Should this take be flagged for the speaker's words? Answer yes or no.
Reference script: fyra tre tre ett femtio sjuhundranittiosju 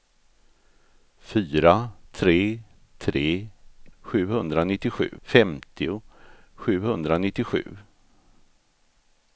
yes